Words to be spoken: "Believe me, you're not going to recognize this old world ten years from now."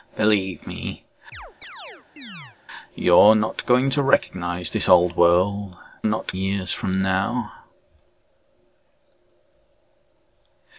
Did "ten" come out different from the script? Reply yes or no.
yes